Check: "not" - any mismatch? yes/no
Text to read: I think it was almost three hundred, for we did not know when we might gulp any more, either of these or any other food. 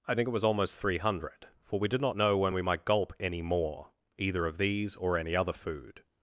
no